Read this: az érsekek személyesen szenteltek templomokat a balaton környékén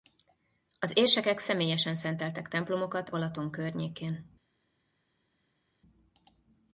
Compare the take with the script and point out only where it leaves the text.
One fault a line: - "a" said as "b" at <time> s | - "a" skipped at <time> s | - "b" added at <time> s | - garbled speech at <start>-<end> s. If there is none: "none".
- "a" skipped at 3.1 s